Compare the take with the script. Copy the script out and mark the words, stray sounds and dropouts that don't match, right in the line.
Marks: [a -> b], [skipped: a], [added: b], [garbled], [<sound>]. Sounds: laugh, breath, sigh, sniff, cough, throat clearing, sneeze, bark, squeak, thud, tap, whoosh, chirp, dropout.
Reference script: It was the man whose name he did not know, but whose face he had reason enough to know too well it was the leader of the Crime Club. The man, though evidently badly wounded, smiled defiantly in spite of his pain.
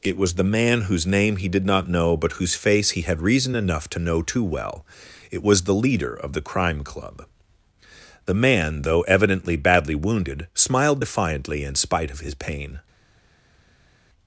It was the man whose name he did not know, but whose face he had reason enough to know too well it was the leader of the Crime Club. The man, though evidently badly wounded, smiled defiantly in spite of his pain.